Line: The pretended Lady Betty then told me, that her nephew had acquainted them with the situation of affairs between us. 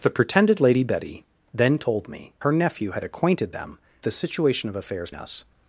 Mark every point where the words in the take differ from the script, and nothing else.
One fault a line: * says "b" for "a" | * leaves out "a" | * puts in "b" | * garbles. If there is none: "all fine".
* leaves out "that"
* leaves out "with"
* leaves out "between"